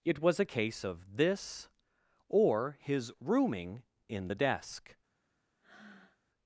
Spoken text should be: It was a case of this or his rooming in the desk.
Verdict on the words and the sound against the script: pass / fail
fail